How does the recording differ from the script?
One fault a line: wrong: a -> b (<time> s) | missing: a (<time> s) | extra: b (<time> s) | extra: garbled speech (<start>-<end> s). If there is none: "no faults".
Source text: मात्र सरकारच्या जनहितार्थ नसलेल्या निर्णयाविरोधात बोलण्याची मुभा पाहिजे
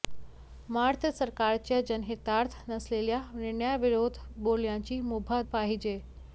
no faults